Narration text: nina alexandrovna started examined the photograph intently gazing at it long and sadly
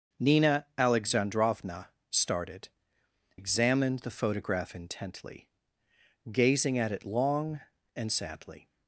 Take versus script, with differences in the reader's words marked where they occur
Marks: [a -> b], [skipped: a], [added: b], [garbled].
nina alexandrovna started examined the photograph intently gazing at it long and sadly